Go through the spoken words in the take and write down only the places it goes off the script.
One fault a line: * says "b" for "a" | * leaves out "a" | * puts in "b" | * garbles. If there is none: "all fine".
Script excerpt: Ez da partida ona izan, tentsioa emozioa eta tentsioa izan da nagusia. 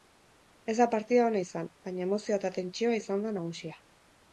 * says "baina" for "tentsioa"